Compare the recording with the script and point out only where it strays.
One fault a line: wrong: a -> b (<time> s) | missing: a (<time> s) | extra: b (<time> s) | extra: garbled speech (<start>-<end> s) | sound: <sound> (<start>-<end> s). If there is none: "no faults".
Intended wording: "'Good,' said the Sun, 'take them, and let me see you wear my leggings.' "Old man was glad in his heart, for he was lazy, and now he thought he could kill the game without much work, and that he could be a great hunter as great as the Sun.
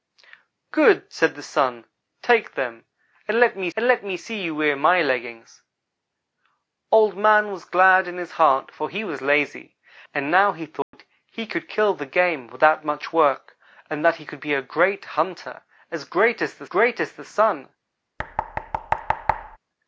extra: and let me (3.8 s)
sound: dropout (10.8-10.9 s)
extra: great as the (16.6 s)
sound: thud (18.2-19.6 s)